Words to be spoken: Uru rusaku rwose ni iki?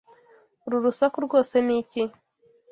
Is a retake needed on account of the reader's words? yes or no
no